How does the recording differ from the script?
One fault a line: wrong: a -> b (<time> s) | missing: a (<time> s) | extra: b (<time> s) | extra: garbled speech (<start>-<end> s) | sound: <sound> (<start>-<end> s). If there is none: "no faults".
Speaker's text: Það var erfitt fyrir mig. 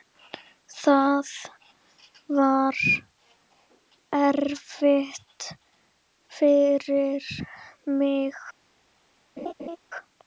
sound: laugh (9.4-9.8 s)